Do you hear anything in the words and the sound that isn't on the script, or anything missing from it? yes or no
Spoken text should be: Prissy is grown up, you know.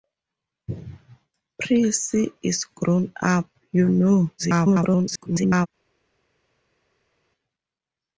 yes